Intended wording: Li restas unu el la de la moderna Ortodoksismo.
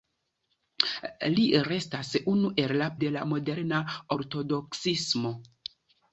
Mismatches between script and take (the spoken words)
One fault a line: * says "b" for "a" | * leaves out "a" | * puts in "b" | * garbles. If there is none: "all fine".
all fine